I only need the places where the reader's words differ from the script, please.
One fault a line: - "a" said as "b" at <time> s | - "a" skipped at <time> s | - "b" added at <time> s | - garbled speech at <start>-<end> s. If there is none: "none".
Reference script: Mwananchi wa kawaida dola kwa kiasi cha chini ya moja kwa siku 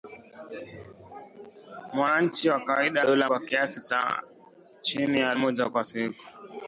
none